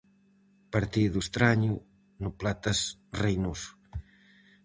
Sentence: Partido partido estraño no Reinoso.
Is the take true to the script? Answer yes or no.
no